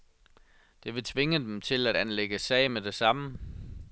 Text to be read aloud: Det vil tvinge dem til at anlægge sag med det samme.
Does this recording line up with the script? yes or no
yes